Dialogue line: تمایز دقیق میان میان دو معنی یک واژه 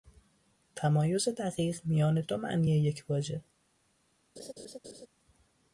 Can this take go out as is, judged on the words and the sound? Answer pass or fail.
fail